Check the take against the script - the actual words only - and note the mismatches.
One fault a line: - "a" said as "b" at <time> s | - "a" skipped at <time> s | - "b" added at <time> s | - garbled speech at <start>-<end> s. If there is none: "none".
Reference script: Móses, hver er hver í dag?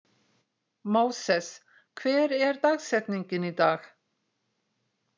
- "hver" said as "dagsetningin" at 2.7 s